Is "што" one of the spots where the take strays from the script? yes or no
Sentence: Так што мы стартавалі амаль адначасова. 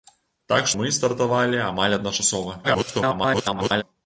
yes